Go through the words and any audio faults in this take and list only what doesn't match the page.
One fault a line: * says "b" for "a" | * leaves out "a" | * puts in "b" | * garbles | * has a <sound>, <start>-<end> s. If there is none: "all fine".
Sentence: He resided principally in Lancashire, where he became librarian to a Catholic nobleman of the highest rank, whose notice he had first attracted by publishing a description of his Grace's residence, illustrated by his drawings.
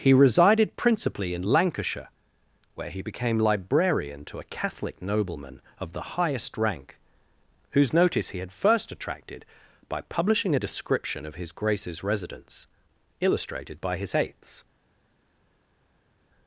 * says "eighths" for "drawings"